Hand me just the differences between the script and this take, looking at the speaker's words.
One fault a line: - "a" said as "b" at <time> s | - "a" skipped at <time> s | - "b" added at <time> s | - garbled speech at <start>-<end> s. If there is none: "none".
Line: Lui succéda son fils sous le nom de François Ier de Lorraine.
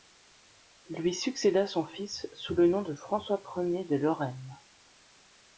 none